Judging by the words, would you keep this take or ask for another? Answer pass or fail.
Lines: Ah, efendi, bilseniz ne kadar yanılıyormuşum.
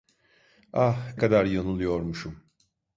fail